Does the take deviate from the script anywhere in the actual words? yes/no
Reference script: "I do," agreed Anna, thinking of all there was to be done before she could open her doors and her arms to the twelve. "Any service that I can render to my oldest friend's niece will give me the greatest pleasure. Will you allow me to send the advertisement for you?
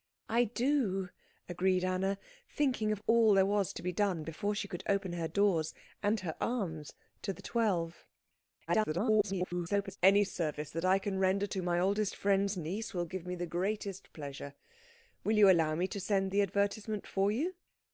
yes